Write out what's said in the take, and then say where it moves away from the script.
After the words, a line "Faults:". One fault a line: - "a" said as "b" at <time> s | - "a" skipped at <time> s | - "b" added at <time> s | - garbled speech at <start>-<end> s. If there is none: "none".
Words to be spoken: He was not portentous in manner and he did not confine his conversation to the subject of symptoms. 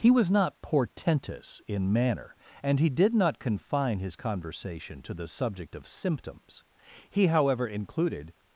He was not portentous in manner and he did not confine his conversation to the subject of symptoms. He however included
Faults:
- "He however included" added at 7.1 s